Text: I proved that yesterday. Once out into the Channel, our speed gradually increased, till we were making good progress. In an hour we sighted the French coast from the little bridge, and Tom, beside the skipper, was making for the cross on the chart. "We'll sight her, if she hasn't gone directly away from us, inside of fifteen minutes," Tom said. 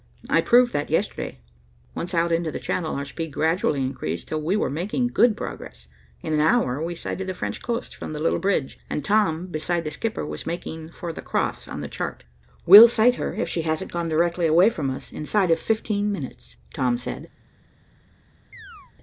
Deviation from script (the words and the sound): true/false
true